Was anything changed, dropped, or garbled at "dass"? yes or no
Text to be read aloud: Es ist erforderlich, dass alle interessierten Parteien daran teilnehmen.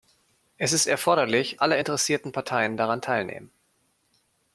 yes